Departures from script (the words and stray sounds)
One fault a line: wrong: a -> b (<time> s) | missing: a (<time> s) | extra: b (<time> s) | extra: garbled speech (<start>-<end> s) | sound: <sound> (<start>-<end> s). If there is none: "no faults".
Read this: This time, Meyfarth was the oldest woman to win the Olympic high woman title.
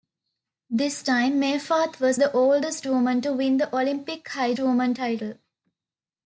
no faults